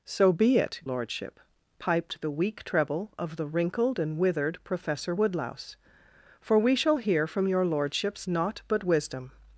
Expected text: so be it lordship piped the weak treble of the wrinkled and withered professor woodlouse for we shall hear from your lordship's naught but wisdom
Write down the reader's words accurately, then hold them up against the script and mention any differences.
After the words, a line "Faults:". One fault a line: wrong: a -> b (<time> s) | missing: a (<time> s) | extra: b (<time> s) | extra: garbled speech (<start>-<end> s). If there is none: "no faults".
so be it lordship piped the weak treble of the wrinkled and withered professor woodlouse for we shall hear from your lordship's naught but wisdom
Faults:
no faults